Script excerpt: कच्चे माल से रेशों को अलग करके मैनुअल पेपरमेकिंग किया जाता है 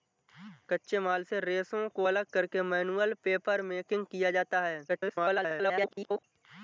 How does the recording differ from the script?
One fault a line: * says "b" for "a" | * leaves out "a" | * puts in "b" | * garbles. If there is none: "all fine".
* garbles